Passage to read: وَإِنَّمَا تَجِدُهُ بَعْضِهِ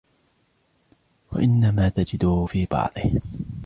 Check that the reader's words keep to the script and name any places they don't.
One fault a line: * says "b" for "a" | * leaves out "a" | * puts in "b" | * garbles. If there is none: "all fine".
* puts in "فِي"